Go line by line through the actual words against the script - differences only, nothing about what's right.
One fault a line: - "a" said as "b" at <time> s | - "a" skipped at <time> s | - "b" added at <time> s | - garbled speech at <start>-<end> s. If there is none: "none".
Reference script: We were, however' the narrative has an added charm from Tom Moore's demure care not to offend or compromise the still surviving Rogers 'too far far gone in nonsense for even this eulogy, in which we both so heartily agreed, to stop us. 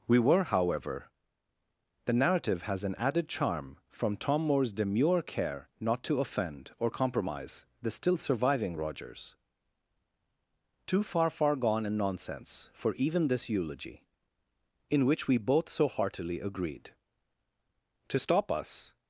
none